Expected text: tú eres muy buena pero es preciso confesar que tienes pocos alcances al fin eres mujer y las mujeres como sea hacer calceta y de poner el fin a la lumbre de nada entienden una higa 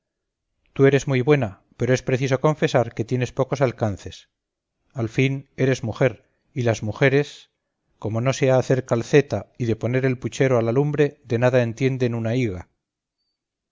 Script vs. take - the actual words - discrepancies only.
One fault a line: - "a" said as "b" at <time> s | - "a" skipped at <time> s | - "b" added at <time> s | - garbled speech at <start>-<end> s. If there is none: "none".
- "no" added at 8.2 s
- "fin" said as "puchero" at 10.2 s